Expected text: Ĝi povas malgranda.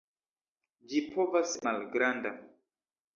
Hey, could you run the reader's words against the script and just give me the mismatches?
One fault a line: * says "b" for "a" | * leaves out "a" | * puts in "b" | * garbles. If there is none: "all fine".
all fine